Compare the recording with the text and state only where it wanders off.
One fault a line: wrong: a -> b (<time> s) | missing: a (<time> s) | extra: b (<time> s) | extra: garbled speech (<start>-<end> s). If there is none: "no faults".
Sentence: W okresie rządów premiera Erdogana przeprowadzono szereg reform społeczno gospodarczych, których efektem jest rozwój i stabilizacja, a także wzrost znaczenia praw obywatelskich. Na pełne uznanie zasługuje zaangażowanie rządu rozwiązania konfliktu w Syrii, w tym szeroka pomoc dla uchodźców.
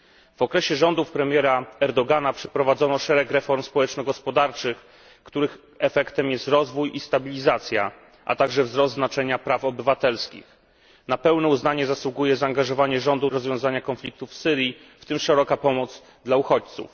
no faults